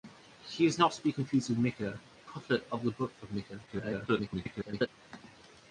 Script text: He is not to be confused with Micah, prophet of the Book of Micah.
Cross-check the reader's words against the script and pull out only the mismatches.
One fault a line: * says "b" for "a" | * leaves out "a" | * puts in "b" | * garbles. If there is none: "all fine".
* garbles